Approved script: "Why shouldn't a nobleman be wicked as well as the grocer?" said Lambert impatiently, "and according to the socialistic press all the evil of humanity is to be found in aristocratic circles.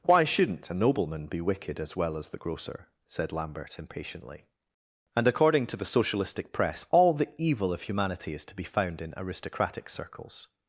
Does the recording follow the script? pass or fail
pass